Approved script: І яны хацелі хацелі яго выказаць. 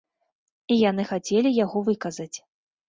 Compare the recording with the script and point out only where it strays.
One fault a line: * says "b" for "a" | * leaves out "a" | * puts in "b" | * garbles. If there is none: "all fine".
* leaves out "хацелі"